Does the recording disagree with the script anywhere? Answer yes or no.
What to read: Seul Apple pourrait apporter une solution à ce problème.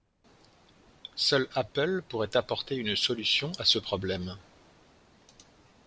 no